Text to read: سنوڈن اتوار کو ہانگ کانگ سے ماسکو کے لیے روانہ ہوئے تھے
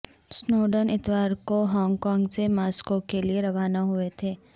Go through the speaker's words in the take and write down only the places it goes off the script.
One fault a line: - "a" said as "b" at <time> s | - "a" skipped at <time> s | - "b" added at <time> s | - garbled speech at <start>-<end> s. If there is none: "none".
none